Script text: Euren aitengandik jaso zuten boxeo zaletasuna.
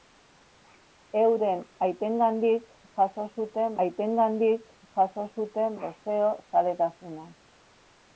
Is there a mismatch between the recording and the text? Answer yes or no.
yes